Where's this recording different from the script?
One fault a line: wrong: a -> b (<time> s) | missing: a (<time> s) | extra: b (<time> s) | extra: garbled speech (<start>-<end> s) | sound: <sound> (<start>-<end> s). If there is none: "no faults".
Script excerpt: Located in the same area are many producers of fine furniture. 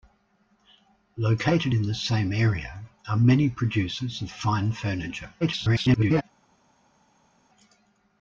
extra: garbled speech (5.4-6.2 s)